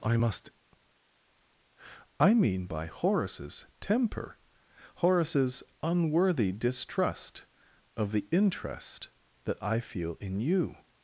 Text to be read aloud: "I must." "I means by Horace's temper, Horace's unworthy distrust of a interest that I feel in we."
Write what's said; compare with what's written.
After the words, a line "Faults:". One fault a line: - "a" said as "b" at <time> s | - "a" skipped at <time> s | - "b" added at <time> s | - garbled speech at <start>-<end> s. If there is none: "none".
"I must." "I mean by Horace's temper, Horace's unworthy distrust of the interest that I feel in you."
Faults:
- "means" said as "mean" at 2.3 s
- "a" said as "the" at 8.1 s
- "we" said as "you" at 10.4 s